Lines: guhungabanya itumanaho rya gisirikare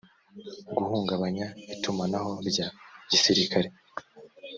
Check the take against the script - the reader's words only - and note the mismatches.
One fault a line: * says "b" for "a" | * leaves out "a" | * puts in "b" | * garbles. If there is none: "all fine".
all fine